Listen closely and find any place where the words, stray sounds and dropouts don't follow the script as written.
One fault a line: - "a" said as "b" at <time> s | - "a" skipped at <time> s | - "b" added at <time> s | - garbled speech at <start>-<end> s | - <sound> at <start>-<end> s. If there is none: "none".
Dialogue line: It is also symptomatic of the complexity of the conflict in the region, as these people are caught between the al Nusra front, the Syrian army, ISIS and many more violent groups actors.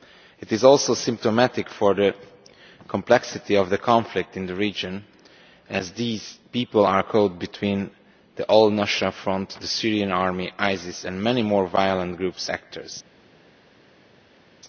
none